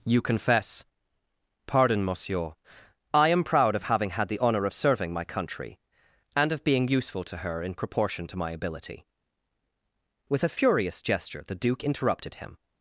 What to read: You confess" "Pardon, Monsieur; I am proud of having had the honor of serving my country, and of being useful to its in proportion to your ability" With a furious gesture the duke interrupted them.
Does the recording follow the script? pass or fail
fail